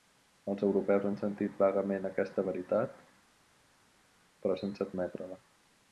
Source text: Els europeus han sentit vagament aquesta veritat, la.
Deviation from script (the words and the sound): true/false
true